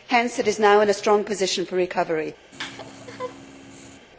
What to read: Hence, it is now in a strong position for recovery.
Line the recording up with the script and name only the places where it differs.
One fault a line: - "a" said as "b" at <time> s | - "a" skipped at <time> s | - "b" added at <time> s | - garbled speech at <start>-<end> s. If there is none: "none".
none